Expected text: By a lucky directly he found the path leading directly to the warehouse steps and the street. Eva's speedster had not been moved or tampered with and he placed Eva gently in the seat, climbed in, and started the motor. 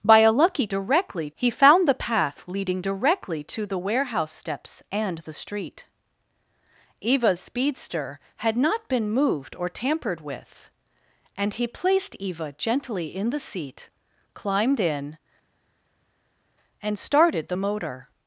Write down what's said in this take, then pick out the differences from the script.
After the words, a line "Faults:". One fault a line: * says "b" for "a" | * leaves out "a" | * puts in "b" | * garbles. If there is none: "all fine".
By a lucky directly he found the path leading directly to the warehouse steps and the street. Eva's speedster had not been moved or tampered with and he placed Eva gently in the seat, climbed in, and started the motor.
Faults:
all fine